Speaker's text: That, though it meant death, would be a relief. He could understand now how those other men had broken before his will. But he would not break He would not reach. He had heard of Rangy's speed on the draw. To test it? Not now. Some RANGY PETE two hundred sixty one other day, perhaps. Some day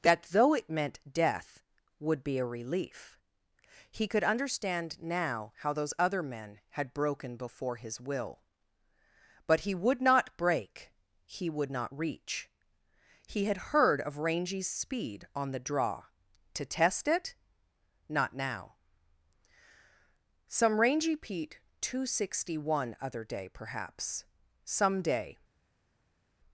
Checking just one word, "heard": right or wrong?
right